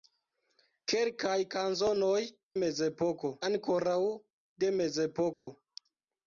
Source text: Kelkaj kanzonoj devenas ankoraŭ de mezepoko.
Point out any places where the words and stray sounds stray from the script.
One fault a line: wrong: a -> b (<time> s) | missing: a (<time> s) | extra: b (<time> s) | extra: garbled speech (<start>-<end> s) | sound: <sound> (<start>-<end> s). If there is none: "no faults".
wrong: devenas -> mezepoko (2.6 s)
sound: dropout (5.3-5.5 s)